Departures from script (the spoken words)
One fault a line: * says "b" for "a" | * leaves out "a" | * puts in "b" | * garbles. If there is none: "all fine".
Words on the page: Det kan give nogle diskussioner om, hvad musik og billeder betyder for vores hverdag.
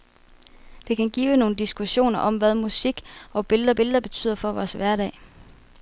* puts in "billeder"